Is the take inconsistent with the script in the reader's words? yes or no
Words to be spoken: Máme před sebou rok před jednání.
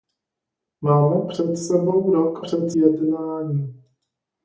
no